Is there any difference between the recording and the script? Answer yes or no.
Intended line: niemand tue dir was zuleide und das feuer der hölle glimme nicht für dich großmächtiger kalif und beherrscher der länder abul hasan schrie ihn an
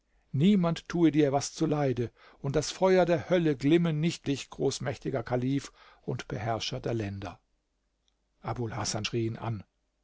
yes